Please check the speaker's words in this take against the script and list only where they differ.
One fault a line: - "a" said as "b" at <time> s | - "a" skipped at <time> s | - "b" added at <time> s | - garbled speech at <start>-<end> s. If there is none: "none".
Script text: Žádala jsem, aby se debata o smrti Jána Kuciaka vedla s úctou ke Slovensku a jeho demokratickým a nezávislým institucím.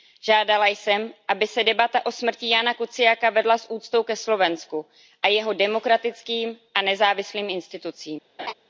none